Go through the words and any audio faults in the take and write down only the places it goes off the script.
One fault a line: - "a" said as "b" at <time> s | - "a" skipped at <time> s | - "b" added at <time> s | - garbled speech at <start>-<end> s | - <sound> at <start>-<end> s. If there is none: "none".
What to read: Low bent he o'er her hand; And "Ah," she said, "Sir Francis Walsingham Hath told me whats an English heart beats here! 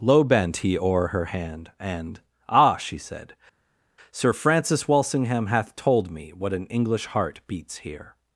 - "whats" said as "what" at 6.3 s